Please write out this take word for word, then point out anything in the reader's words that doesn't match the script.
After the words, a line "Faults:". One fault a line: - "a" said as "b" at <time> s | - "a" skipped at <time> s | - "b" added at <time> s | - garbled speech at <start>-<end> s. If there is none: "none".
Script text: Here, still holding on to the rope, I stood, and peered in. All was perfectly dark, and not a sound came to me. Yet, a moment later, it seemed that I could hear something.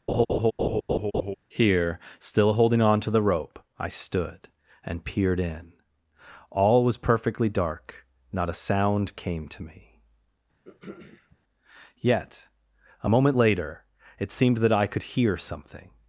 Here, still holding on to the rope, I stood, and peered in. All was perfectly dark, not a sound came to me. Yet, a moment later, it seemed that I could hear something.
Faults:
- "and" skipped at 8.1 s